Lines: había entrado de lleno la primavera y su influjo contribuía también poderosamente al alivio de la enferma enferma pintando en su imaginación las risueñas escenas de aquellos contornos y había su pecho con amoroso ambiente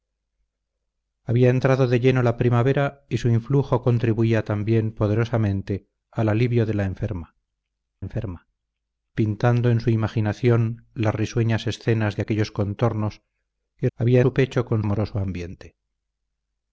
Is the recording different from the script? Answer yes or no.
no